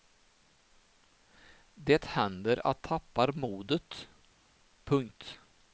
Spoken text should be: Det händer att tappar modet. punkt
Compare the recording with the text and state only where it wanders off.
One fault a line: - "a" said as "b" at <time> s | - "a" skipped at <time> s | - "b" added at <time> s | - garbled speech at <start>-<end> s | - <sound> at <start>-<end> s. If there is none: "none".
none